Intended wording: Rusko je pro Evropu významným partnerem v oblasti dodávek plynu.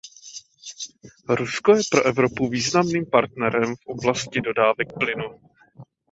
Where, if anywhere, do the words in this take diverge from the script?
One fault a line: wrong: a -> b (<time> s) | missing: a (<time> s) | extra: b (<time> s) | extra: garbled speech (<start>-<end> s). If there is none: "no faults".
no faults